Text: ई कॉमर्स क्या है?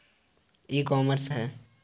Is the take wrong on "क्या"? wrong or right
wrong